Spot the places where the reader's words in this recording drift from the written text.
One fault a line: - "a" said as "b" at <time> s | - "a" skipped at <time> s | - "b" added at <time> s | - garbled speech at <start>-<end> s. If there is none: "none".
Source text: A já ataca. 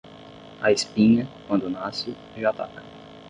- "espinha quando nasce" added at 0.7 s